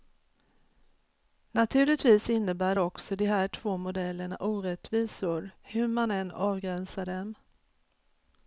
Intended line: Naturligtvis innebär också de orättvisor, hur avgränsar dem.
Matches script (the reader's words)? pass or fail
fail